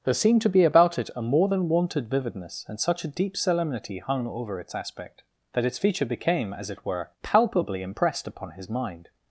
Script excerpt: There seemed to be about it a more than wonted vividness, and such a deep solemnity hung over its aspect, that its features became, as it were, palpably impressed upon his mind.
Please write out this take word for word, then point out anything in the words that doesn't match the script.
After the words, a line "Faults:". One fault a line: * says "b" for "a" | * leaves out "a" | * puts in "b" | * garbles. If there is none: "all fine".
There seemed to be about it a more than wonted vividness, and such a deep solemnity hung over its aspect, that its feature became, as it were, palpably impressed upon his mind.
Faults:
* says "feature" for "features"